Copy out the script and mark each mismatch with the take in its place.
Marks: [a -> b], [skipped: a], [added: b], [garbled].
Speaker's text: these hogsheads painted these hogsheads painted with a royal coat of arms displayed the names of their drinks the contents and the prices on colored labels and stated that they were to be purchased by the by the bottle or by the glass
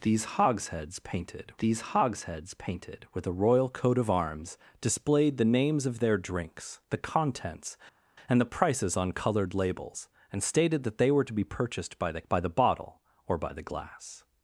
these hogsheads painted these hogsheads painted with a royal coat of arms displayed the names of their drinks the contents and the prices on colored labels and stated that they were to be purchased by the by the bottle or by the glass